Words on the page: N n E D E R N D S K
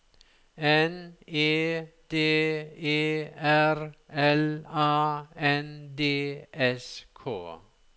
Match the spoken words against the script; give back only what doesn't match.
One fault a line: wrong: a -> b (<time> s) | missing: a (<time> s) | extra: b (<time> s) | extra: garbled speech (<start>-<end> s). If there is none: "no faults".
missing: n (1.1 s)
extra: L A (4.1 s)